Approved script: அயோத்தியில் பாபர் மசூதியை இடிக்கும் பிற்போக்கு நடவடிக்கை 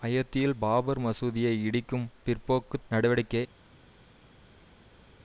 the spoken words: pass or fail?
pass